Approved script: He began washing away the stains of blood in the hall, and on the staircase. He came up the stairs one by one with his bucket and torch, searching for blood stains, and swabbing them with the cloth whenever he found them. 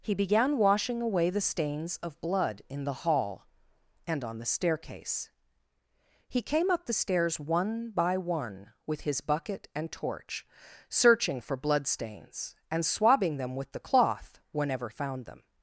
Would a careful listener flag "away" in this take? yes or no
no